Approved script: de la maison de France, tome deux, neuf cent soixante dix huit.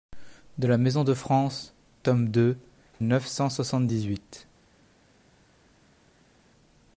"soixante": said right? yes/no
yes